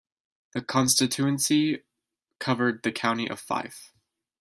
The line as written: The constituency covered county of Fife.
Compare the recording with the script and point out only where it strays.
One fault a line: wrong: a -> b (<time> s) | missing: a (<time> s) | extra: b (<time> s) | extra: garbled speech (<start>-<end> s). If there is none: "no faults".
extra: the (2.8 s)